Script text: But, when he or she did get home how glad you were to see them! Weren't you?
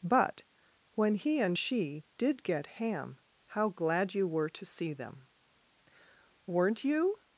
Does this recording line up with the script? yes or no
no